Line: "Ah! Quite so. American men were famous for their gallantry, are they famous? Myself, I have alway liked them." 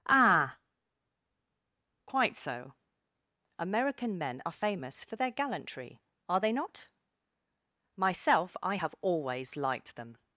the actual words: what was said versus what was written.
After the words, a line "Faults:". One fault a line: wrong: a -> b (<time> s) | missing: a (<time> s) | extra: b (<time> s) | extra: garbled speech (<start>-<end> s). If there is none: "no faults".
"Ah! Quite so. American men are famous for their gallantry, are they not? Myself, I have always liked them."
Faults:
wrong: were -> are (4.4 s)
wrong: famous -> not (6.5 s)
wrong: alway -> always (9.0 s)